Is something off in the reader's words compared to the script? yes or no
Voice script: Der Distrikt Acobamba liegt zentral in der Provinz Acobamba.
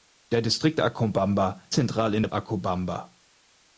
yes